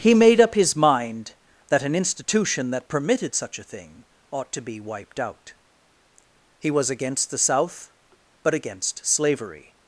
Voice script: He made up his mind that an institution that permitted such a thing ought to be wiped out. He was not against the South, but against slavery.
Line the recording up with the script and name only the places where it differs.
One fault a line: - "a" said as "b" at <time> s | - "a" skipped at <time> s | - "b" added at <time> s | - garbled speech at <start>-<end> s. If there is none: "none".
- "not" skipped at 6.9 s